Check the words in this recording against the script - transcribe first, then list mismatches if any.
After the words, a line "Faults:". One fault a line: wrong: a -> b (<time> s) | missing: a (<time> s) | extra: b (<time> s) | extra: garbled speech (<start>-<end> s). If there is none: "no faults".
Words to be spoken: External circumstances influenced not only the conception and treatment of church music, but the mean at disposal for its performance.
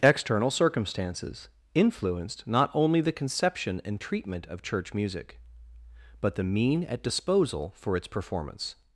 External circumstances influenced not only the conception and treatment of church music, but the mean at disposal for its performance.
Faults:
no faults